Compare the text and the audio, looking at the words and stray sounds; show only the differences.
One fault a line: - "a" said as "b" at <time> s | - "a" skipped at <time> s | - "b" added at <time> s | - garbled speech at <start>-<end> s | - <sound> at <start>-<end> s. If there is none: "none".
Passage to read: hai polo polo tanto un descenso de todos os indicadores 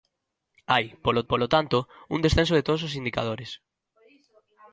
none